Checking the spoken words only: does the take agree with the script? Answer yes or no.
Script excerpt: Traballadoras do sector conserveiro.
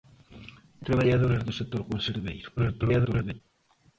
no